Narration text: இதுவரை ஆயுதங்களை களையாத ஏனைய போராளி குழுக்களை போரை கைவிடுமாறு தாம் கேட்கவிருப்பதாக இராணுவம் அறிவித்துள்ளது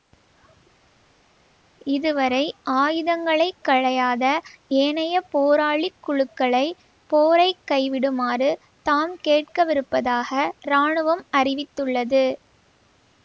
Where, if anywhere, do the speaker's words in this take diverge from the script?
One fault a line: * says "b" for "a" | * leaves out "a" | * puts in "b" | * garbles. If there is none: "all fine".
all fine